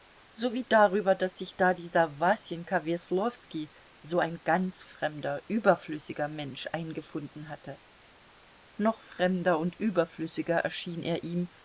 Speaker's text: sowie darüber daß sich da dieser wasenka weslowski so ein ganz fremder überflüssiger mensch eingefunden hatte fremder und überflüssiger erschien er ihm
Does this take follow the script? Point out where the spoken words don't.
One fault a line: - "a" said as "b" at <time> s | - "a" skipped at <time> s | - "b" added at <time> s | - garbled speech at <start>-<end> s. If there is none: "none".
- "noch" added at 8.8 s